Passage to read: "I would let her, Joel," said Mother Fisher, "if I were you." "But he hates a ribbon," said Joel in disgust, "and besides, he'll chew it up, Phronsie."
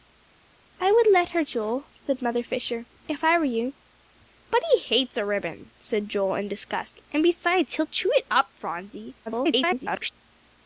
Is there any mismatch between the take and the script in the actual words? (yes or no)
yes